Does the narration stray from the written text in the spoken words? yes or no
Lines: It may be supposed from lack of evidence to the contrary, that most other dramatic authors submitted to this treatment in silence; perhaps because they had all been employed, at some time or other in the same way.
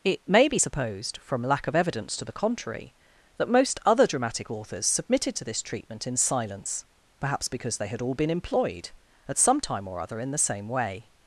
no